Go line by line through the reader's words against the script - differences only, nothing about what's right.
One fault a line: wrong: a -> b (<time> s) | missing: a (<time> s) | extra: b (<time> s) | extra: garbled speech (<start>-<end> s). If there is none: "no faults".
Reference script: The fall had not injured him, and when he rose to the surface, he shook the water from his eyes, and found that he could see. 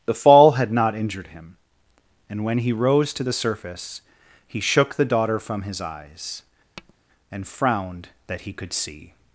wrong: water -> daughter (5.1 s)
wrong: found -> frowned (7.5 s)